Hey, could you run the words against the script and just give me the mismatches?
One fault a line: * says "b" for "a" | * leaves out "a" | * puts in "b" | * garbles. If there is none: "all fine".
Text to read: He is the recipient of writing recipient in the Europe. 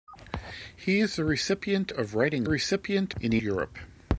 all fine